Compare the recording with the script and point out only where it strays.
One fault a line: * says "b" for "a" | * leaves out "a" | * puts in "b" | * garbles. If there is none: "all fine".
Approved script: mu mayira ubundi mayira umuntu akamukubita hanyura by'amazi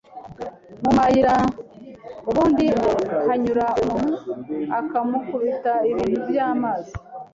* says "hanyura" for "mayira"
* says "ibintu" for "hanyura"